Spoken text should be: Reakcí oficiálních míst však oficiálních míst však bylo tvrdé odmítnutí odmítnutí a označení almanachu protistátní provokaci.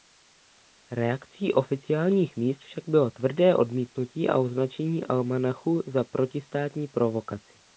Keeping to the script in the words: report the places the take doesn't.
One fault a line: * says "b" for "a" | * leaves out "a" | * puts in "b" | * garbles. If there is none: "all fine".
* leaves out "oficiálních míst však"
* leaves out "odmítnutí"
* puts in "za"